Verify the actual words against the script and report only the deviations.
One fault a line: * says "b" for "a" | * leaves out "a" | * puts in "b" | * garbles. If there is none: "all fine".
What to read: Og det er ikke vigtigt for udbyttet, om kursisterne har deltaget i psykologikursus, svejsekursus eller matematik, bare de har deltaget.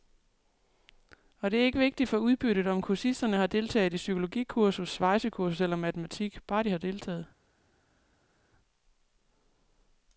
all fine